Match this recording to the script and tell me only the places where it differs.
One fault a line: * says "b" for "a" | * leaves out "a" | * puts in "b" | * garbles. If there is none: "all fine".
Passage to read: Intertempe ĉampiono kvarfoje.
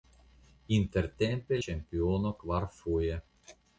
all fine